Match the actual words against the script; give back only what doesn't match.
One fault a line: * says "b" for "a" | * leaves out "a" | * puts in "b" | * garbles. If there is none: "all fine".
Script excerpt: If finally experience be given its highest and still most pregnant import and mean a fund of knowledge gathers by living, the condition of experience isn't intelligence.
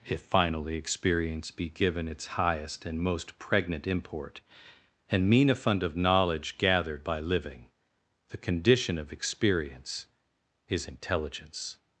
* leaves out "still"
* says "gathered" for "gathers"
* says "is" for "isn't"